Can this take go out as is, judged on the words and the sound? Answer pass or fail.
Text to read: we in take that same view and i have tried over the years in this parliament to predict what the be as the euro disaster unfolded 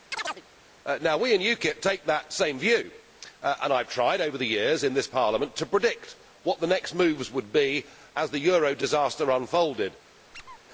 fail